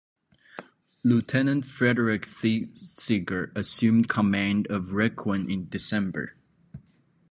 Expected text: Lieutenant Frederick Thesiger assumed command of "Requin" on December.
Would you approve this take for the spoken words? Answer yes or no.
no